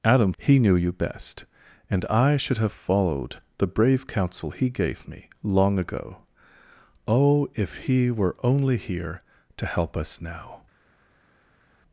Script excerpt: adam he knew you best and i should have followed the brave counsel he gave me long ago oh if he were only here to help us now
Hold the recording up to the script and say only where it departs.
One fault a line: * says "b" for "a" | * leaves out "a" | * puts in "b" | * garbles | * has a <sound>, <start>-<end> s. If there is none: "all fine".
all fine